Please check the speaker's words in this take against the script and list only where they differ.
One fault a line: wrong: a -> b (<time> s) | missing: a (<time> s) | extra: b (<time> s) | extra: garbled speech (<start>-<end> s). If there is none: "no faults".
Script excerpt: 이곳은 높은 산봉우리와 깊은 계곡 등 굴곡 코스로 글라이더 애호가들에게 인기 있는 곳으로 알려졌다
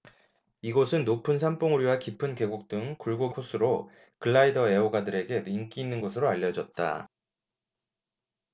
no faults